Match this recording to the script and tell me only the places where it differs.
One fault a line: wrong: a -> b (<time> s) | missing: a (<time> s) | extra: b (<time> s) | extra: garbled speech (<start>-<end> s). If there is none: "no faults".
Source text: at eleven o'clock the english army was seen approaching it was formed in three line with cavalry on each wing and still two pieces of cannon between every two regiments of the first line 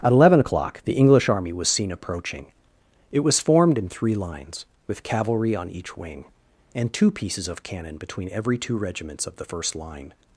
wrong: line -> lines (4.1 s)
missing: still (6.9 s)